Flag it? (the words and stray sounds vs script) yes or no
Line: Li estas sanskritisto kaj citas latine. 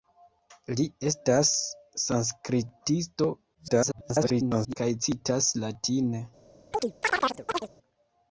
yes